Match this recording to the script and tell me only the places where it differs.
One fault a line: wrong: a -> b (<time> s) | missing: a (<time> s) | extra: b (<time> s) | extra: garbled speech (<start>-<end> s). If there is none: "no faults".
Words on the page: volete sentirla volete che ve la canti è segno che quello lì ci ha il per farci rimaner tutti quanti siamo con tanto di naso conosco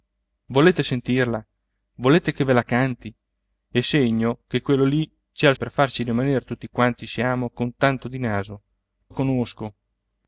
no faults